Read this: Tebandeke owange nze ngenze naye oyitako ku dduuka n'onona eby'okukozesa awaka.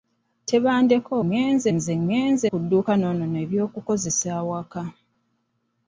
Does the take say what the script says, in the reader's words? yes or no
no